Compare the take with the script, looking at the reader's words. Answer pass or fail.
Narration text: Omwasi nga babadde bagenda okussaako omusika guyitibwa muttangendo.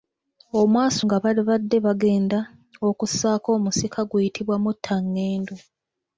pass